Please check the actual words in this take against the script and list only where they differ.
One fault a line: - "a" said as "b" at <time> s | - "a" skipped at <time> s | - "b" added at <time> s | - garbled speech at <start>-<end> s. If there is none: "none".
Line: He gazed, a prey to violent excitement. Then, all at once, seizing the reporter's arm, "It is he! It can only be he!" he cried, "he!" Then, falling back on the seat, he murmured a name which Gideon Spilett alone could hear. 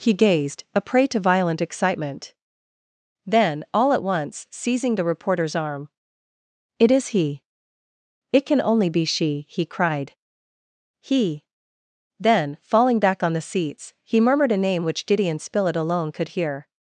- "he" said as "she" at 9.0 s
- "seat" said as "seats" at 13.4 s